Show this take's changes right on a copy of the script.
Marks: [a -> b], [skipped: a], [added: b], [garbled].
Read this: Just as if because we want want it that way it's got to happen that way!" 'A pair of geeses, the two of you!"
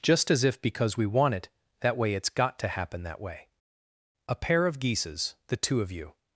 Just as if because we want [skipped: want] it that way it's got to happen that way!" 'A pair of geeses, the two of you!"